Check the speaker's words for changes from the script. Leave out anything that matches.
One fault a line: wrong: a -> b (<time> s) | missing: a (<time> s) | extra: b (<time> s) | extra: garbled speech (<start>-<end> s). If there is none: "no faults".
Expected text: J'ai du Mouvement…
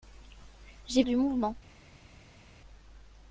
no faults